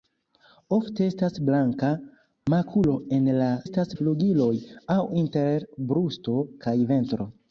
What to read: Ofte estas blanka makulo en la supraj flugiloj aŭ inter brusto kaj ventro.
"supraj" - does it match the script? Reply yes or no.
no